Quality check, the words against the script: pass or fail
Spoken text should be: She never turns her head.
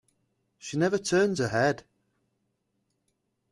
pass